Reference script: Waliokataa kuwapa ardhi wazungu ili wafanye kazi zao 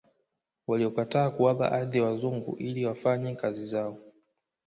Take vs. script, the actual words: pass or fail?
pass